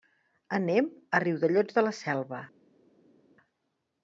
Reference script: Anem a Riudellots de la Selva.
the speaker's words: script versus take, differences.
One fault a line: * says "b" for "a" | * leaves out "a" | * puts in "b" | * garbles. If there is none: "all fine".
all fine